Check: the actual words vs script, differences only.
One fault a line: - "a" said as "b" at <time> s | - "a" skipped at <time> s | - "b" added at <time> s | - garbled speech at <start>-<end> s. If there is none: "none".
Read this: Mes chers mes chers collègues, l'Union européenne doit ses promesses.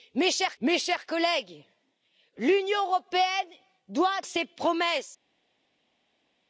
none